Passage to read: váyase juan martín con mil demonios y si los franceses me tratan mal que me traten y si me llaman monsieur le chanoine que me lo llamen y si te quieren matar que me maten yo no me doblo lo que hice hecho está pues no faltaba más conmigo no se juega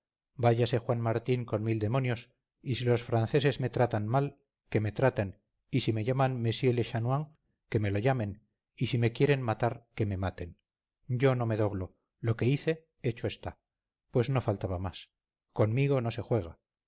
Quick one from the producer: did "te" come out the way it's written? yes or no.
no